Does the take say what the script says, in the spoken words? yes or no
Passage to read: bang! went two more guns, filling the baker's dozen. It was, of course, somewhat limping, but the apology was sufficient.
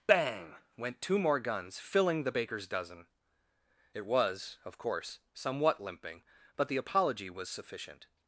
yes